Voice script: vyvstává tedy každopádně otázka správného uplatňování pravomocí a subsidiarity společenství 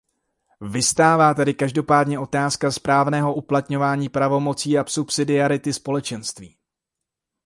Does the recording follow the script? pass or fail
pass